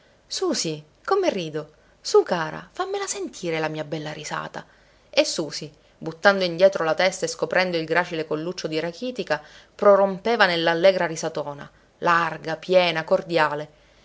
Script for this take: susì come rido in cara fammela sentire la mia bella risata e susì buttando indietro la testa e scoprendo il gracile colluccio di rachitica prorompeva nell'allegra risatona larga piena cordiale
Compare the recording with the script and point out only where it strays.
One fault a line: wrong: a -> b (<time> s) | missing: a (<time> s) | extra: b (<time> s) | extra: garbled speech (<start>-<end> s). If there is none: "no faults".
wrong: in -> su (2.0 s)